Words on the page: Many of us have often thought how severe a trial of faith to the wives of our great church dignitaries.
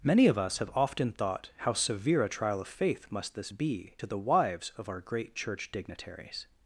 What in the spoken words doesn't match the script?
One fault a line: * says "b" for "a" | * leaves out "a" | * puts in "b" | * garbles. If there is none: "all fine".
* puts in "must this be"